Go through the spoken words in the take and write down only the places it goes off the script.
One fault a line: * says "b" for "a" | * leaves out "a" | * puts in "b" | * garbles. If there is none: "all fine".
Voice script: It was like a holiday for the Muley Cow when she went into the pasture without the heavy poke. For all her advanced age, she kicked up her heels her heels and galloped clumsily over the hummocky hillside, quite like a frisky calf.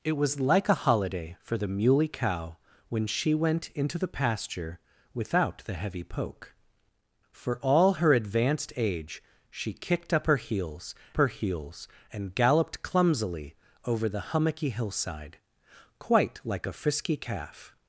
all fine